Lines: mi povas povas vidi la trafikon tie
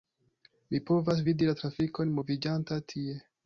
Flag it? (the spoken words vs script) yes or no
yes